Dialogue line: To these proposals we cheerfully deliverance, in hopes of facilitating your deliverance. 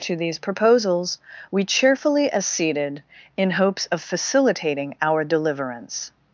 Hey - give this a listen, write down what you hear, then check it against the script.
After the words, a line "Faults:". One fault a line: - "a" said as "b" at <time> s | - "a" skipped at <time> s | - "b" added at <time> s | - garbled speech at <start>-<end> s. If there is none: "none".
To these proposals we cheerfully acceded, in hopes of facilitating our deliverance.
Faults:
- "deliverance" said as "acceded" at 2.3 s
- "your" said as "our" at 5.0 s